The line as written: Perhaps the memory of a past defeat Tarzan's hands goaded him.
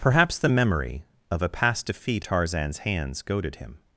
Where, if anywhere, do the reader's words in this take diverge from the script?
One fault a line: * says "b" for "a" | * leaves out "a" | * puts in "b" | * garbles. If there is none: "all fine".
all fine